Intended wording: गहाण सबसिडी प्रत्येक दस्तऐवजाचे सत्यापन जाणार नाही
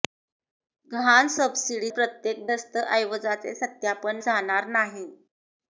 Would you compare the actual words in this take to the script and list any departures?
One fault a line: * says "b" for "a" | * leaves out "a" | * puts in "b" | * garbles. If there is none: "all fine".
all fine